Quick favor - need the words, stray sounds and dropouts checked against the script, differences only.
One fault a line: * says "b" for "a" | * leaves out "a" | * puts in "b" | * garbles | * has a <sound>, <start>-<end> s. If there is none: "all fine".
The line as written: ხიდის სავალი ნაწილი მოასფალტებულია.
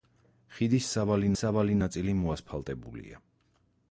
* puts in "სავალი"